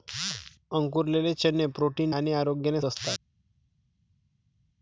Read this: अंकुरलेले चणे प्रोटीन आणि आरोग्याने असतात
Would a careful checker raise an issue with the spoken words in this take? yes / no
no